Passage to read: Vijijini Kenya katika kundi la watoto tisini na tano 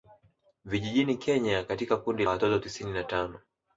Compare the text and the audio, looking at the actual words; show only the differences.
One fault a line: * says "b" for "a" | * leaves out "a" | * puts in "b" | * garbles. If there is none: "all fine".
* leaves out "la"